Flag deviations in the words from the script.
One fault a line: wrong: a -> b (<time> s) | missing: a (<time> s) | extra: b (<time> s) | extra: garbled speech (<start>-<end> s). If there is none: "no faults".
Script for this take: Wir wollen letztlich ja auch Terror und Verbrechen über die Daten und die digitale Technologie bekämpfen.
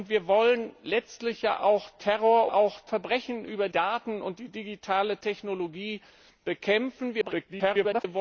wrong: und -> auch (2.5 s)
missing: die (3.7 s)
extra: garbled speech (7.2-8.0 s)